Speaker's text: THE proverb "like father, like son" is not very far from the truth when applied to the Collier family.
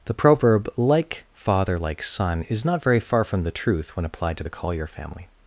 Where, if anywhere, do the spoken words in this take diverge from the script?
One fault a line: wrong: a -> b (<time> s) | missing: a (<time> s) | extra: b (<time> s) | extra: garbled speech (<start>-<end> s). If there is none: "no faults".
no faults